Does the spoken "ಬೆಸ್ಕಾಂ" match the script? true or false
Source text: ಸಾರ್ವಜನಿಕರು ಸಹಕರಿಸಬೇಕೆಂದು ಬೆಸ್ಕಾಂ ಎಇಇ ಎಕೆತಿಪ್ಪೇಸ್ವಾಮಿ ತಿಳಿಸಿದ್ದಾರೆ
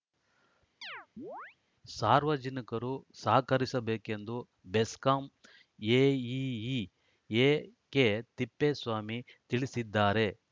true